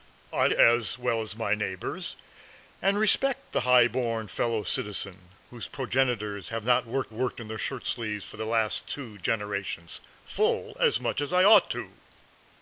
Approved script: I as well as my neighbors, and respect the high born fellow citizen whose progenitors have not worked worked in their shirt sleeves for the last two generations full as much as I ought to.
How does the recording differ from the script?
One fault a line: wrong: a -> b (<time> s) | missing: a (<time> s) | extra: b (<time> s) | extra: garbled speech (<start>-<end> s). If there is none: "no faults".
no faults